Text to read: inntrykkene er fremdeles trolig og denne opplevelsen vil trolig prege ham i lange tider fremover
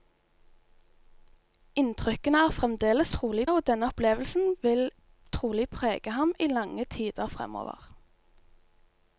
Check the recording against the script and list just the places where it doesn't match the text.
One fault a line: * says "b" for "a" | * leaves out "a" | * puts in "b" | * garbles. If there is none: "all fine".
all fine